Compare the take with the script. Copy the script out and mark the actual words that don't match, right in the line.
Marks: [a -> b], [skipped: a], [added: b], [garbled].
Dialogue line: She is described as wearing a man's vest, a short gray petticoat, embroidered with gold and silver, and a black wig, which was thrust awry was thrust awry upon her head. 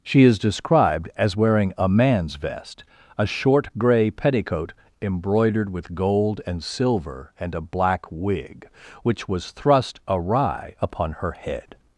She is described as wearing a man's vest, a short gray petticoat, embroidered with gold and silver, and a black wig, which was thrust awry [skipped: was thrust awry] upon her head.